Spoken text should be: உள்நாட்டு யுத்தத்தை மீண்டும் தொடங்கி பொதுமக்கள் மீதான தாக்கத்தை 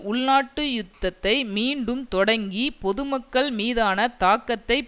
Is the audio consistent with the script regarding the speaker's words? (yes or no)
yes